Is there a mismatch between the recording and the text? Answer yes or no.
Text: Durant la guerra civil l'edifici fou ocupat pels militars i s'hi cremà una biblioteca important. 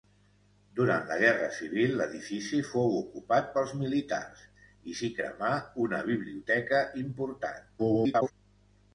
yes